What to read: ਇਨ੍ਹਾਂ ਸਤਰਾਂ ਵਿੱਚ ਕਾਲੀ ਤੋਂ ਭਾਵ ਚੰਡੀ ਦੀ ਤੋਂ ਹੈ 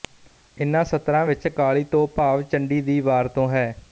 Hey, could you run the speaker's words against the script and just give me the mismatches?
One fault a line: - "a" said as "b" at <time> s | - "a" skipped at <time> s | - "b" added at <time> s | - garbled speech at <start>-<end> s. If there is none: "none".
- "ਵਾਰ" added at 3.0 s